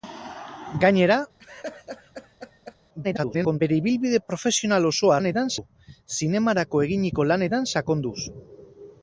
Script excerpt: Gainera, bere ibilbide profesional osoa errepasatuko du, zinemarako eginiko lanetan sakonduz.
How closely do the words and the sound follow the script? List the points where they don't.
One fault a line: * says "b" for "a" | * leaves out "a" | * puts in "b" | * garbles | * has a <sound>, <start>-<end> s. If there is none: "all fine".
* has a laugh, 1.4-2.8 s
* garbles
* says "lanetan" for "errepasatuko"